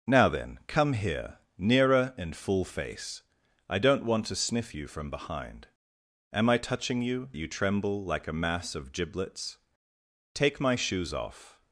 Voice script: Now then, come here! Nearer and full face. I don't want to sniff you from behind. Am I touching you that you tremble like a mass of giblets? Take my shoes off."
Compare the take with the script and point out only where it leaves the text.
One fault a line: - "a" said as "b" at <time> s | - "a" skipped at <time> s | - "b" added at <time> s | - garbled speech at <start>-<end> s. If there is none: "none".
- "that" skipped at 7.3 s